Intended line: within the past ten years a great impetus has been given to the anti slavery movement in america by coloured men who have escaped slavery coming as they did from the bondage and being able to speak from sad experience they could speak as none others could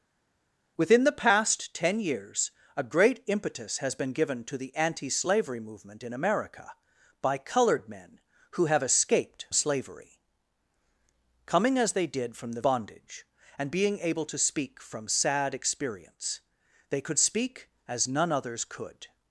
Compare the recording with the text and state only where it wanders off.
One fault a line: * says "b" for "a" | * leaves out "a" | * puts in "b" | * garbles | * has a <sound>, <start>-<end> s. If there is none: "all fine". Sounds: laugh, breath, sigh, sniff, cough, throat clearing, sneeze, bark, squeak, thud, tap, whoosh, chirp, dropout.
all fine